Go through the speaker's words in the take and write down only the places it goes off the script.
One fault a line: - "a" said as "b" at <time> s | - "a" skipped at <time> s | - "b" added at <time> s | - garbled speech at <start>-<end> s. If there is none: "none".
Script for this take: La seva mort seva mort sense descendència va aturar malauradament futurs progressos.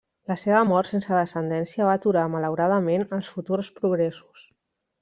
- "seva mort" skipped at 0.9 s
- "els" added at 3.2 s